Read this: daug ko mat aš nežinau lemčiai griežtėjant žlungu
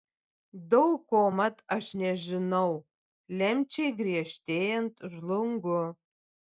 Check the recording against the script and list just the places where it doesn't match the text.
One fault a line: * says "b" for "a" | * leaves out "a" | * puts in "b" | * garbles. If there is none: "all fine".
all fine